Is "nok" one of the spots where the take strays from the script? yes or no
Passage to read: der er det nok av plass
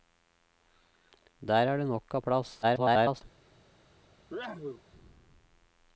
no